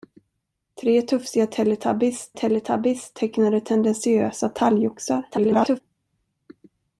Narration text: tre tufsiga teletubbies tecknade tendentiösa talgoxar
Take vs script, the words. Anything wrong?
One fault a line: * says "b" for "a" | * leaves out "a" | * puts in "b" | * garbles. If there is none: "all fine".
* puts in "teletubbies"
* garbles